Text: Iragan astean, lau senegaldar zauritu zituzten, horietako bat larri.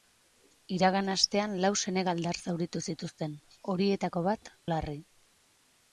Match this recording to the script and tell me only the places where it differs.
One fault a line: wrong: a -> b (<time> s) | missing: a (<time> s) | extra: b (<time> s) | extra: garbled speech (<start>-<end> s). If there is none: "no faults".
no faults